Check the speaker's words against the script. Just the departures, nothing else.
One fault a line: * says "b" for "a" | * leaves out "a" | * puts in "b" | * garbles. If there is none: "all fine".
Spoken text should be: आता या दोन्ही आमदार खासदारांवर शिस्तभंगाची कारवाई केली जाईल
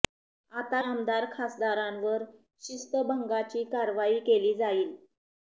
* leaves out "या दोन्ही"